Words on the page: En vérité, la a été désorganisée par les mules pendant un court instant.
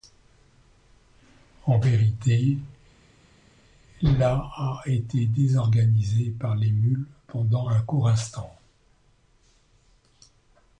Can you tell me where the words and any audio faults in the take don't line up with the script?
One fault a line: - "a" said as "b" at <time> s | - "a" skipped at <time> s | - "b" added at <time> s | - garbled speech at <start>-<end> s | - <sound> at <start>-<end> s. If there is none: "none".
none